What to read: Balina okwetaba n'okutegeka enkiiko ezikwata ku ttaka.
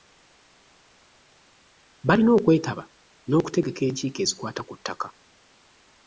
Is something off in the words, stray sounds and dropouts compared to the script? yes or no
no